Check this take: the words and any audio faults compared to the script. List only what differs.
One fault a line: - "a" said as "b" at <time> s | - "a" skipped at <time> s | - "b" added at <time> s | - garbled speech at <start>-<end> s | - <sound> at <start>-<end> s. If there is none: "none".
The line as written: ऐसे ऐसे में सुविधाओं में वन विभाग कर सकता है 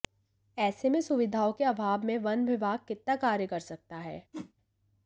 - "ऐसे" skipped at 0.9 s
- "के अभाव" added at 1.5 s
- "कितना कार्य" added at 2.9 s
- whoosh at 4.3-4.5 s